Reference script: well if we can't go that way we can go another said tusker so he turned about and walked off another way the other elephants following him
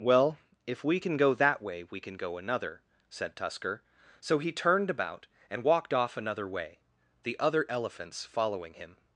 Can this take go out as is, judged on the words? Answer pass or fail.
fail